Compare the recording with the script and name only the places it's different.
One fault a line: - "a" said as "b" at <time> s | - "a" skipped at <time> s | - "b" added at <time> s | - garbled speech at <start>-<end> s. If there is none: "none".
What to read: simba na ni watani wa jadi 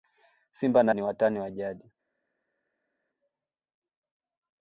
none